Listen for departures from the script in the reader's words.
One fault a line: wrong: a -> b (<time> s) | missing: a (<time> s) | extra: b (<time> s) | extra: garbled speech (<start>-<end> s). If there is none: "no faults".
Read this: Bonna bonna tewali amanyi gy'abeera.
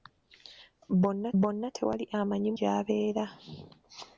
no faults